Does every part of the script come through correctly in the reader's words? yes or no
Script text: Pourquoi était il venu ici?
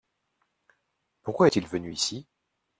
no